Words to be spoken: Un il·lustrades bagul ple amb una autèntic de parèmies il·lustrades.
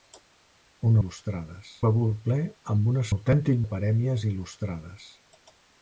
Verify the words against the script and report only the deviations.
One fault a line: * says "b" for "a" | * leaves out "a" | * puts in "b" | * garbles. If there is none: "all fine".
all fine